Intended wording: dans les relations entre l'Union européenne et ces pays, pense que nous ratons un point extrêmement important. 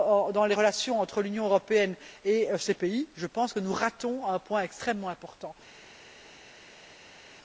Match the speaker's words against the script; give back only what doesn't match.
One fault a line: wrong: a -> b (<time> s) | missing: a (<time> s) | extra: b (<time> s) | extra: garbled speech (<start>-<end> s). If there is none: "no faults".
extra: je (3.2 s)